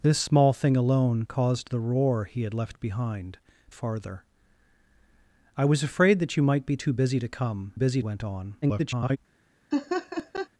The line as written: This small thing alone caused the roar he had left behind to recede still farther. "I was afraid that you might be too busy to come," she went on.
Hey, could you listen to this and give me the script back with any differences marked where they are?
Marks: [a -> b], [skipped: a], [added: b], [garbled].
This small thing alone caused the roar he had left behind [skipped: to recede still] farther. "I was afraid that you might be too busy to come," [she -> busy] went on. [garbled]